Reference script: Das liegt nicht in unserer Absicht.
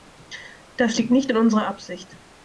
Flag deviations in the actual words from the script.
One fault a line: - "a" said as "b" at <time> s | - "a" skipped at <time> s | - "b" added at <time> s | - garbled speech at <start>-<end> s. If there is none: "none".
none